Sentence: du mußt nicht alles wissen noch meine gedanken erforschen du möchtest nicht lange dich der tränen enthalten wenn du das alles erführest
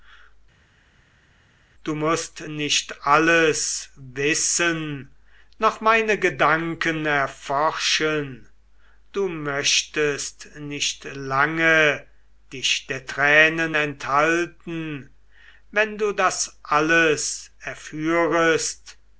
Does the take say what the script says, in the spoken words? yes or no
yes